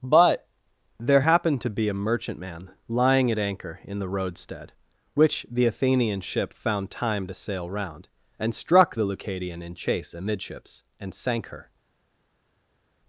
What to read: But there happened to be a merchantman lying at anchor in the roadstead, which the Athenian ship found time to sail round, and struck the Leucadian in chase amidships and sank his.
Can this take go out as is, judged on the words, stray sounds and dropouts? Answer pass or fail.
fail